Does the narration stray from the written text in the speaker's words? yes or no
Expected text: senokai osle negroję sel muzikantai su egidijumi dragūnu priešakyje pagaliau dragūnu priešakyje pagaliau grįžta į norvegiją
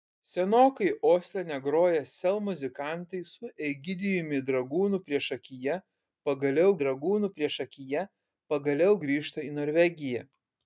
no